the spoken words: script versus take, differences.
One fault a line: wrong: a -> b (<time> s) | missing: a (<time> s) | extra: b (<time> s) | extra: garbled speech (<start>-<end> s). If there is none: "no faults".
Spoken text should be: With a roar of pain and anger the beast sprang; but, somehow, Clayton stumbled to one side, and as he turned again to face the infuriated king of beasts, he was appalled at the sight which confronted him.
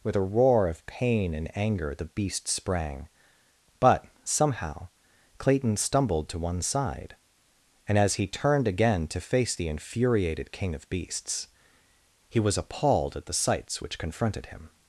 wrong: sight -> sights (13.3 s)